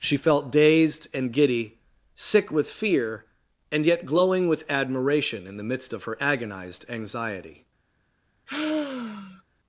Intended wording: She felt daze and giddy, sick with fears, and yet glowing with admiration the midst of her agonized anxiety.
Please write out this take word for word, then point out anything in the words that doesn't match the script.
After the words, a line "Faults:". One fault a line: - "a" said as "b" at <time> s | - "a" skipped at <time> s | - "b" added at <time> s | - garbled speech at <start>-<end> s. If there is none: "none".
She felt dazed and giddy, sick with fear, and yet glowing with admiration in the midst of her agonized anxiety.
Faults:
- "daze" said as "dazed" at 0.5 s
- "fears" said as "fear" at 2.7 s
- "in" added at 5.5 s